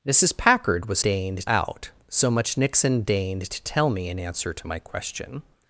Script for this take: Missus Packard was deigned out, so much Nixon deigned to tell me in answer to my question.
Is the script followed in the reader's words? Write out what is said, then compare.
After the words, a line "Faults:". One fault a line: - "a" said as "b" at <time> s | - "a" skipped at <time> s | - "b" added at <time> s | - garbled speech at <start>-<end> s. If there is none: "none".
Missus Packard was deigned out, so much Nixon deigned to tell me in answer to my question.
Faults:
none